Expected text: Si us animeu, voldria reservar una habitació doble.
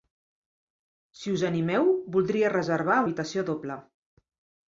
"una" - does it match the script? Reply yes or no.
no